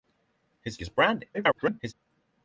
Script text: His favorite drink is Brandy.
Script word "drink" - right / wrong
wrong